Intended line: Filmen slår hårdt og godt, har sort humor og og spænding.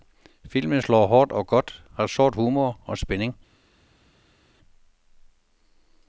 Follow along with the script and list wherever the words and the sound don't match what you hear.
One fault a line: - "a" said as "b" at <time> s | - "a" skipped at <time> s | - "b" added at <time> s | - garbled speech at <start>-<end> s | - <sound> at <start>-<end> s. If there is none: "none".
- "og" skipped at 3.0 s